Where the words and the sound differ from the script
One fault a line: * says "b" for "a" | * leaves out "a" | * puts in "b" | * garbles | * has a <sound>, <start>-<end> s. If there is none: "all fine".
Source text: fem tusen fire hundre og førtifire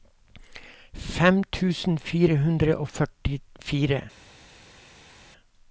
all fine